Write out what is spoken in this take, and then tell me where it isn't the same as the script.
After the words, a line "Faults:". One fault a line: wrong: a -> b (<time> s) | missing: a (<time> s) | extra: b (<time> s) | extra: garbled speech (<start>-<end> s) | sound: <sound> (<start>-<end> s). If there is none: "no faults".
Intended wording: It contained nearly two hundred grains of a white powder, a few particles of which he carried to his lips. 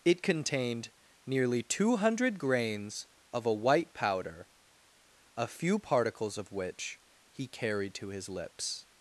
It contained nearly two hundred grains of a white powder, a few particles of which he carried to his lips.
Faults:
no faults